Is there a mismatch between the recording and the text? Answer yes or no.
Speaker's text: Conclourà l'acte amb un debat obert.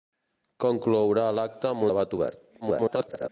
yes